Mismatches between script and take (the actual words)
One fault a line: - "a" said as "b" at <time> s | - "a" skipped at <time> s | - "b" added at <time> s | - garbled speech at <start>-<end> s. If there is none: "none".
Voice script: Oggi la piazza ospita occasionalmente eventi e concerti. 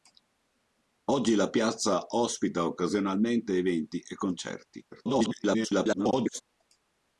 - garbled speech at 4.9-6.4 s